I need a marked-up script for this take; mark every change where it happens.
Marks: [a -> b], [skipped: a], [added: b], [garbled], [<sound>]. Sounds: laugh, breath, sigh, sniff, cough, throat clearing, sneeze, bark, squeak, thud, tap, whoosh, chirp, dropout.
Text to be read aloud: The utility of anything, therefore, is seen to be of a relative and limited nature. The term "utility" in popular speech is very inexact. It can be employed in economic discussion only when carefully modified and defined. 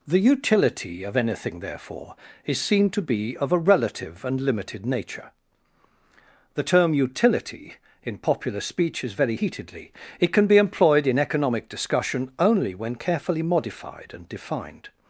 The utility of anything, therefore, is seen to be of a relative and limited nature. The term "utility" in popular speech is very [inexact. -> heatedly] It can be employed in economic discussion only when carefully modified and defined.